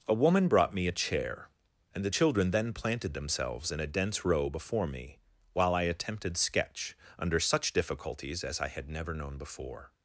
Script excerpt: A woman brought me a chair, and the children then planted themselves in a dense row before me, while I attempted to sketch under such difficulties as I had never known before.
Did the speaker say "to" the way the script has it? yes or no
no